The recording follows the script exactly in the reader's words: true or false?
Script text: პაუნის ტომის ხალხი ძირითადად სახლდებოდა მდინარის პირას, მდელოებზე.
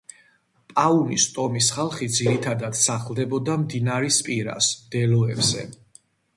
true